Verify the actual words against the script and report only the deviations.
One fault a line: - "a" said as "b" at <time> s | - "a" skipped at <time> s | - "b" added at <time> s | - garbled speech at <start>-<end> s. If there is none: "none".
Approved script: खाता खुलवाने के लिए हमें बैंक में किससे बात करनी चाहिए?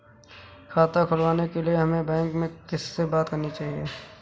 none